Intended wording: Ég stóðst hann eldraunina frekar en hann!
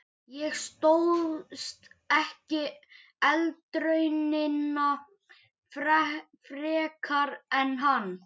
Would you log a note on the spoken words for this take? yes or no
yes